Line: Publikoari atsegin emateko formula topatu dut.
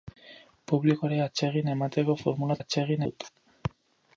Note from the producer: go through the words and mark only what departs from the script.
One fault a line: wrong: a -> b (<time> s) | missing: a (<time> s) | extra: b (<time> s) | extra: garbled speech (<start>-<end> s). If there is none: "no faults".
wrong: topatu -> atsegin (2.6 s)